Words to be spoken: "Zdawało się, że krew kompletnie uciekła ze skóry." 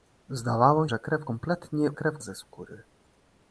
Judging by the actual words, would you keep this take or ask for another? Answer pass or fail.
fail